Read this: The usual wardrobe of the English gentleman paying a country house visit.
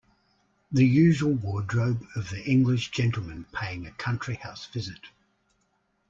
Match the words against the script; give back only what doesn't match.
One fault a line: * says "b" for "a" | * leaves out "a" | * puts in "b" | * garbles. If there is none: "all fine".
all fine